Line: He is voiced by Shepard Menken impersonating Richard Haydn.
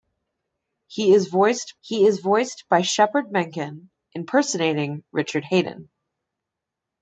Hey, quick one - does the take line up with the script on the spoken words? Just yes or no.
no